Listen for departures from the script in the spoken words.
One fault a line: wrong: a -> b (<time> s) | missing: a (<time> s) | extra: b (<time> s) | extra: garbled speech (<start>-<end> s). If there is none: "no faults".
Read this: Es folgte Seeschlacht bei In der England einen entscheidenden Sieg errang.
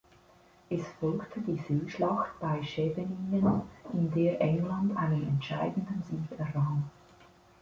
extra: die (1.4 s)
extra: Scheveningen (2.6 s)